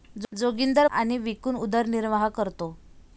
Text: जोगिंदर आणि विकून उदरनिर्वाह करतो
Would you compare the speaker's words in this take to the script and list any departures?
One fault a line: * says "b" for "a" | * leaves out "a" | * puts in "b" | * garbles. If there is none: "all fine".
all fine